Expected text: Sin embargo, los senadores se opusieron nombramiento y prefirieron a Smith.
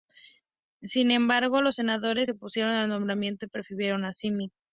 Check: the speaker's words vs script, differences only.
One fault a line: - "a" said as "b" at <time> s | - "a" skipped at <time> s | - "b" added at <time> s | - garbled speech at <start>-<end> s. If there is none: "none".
- "al" added at 2.7 s